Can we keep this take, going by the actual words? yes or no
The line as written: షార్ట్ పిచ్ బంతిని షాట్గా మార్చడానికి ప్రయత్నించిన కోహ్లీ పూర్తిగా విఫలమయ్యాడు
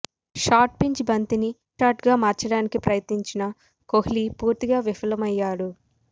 yes